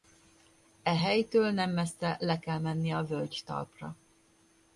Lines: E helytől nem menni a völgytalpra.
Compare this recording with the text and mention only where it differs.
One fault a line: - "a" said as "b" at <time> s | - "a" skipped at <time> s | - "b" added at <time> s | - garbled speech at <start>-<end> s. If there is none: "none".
- "messze le kell" added at 1.7 s